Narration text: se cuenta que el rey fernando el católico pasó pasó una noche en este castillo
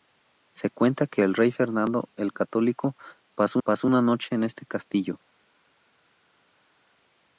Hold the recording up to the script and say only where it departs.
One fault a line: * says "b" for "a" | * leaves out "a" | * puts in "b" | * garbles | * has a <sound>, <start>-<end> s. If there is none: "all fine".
all fine